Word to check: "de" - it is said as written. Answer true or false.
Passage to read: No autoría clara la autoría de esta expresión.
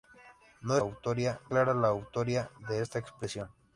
true